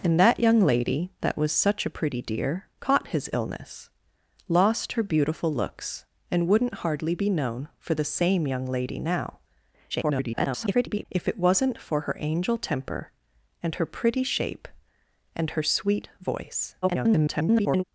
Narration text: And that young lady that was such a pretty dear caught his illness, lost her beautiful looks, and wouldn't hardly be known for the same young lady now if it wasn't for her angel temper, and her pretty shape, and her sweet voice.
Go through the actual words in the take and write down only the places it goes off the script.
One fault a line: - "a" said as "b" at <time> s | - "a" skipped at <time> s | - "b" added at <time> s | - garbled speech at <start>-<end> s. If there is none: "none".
- garbled speech at 9.9-11.1 s
- garbled speech at 16.8-17.8 s